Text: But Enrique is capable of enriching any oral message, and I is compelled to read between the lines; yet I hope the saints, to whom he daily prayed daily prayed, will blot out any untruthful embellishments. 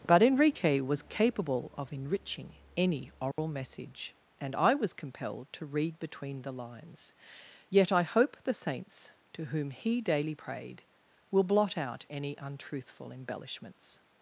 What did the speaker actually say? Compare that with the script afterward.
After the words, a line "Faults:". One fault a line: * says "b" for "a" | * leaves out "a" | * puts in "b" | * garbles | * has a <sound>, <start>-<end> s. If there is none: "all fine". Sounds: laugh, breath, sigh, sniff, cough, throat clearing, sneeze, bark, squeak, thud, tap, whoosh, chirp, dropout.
But Enrique was capable of enriching any oral message, and I was compelled to read between the lines; yet I hope the saints, to whom he daily prayed, will blot out any untruthful embellishments.
Faults:
* says "was" for "is"
* has a dropout, 3.3-3.4 s
* says "was" for "is"
* leaves out "daily prayed"